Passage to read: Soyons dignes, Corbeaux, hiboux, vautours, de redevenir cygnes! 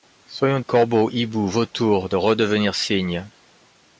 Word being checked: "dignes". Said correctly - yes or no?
no